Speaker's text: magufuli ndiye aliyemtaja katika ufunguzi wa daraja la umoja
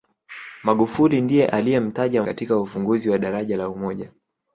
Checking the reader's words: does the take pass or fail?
pass